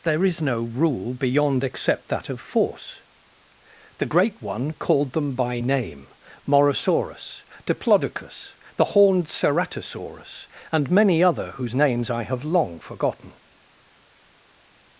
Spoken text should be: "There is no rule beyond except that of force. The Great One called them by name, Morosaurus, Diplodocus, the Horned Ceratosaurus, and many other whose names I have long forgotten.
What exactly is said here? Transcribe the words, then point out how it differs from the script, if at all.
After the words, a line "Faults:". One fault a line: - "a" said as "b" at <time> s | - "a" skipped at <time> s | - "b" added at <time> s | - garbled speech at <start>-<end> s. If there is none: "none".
"There is no rule beyond except that of force. The Great One called them by name, Morosaurus, Diplodocus, the Horned Ceratosaurus, and many other whose names I have long forgotten.
Faults:
none